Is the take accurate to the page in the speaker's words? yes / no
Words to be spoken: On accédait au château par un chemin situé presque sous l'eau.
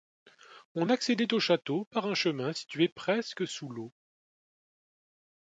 yes